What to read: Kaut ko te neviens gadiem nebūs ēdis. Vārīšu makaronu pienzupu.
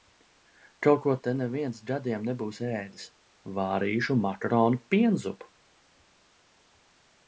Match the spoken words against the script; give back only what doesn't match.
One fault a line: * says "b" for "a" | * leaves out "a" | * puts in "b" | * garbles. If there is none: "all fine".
all fine